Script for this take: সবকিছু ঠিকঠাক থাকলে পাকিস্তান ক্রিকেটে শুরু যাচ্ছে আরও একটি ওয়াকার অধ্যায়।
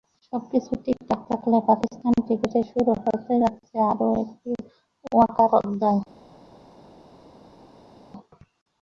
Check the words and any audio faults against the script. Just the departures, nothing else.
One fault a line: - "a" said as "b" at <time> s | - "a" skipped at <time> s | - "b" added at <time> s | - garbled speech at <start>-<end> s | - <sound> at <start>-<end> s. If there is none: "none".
- "হতে" added at 3.0 s